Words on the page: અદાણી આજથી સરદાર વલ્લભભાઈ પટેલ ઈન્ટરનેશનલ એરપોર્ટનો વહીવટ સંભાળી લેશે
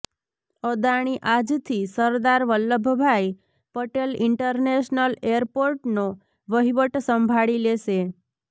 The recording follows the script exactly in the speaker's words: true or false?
true